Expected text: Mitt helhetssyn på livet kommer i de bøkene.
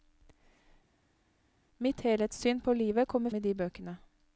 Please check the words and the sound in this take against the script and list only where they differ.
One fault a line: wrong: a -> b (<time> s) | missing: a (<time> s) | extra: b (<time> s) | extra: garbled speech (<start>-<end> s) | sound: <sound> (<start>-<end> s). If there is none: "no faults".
no faults